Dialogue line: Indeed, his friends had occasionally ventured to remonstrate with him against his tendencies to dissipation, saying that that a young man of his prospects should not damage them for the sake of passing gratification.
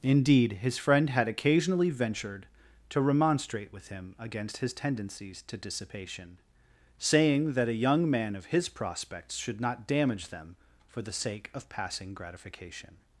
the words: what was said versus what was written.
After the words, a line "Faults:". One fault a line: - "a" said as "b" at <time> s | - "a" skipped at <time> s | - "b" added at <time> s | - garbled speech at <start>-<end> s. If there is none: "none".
Indeed, his friend had occasionally ventured to remonstrate with him against his tendencies to dissipation, saying that a young man of his prospects should not damage them for the sake of passing gratification.
Faults:
- "friends" said as "friend" at 0.8 s
- "that" skipped at 7.7 s